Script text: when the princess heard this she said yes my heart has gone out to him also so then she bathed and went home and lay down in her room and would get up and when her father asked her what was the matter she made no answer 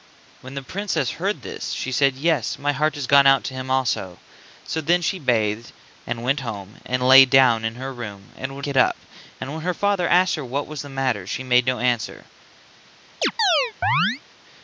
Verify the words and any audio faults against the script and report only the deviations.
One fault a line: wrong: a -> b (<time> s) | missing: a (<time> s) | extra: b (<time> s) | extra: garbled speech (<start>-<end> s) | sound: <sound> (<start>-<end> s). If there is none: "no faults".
sound: chirp (13.2-14.2 s)